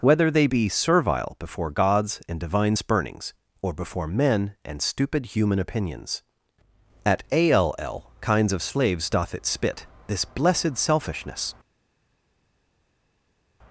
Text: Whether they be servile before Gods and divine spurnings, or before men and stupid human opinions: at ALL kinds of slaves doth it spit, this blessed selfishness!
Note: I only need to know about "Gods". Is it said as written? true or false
true